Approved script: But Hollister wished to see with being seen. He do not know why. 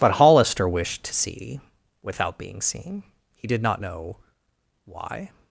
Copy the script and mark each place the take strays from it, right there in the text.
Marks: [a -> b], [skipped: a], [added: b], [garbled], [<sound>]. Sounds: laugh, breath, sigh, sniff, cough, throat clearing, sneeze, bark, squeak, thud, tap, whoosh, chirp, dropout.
But Hollister wished to see [with -> without] being seen. He [do -> did] not know why.